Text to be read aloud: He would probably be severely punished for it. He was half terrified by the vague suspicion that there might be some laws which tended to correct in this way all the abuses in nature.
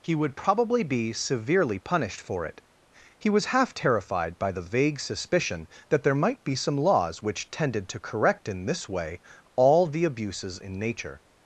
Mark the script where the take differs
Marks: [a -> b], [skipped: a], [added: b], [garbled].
He would probably be severely punished for it. He was half terrified by the vague suspicion that there might be some laws which tended to correct in this way all the abuses in nature.